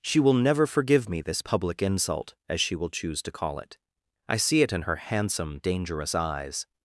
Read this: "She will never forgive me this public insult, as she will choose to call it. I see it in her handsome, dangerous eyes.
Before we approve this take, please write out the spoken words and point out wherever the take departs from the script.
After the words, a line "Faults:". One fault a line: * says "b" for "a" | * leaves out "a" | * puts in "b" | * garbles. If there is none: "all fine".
"She will never forgive me this public insult, as she will choose to call it. I see it in her handsome, dangerous eyes.
Faults:
all fine